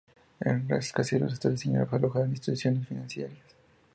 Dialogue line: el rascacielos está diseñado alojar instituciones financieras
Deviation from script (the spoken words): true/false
false